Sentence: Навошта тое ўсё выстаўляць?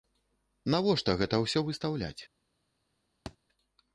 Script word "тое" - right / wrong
wrong